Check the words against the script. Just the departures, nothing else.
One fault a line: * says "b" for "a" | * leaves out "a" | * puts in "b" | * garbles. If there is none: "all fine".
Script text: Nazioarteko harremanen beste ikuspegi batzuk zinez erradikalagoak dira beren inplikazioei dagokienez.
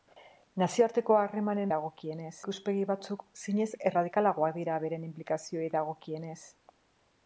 * says "dagokienez" for "beste"